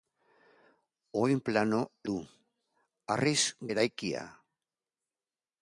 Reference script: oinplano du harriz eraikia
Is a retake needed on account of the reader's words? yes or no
no